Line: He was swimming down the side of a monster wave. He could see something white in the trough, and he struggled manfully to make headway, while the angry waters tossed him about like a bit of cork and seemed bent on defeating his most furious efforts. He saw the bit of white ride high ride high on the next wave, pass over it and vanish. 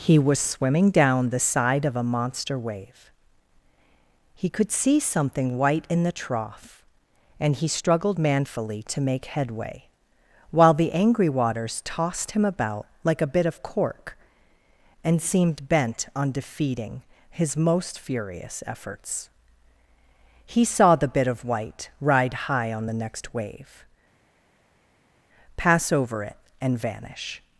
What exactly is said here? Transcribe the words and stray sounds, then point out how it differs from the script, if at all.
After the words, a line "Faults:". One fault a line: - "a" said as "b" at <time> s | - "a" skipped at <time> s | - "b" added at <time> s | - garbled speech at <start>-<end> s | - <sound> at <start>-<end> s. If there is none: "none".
He was swimming down the side of a monster wave. He could see something white in the trough, and he struggled manfully to make headway, while the angry waters tossed him about like a bit of cork and seemed bent on defeating his most furious efforts. He saw the bit of white ride high on the next wave, pass over it and vanish.
Faults:
- "ride high" skipped at 22.7 s